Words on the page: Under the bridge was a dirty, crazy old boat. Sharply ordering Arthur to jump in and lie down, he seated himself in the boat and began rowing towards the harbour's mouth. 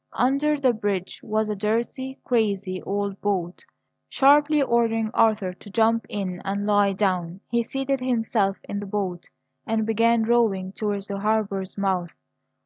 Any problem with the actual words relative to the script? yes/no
no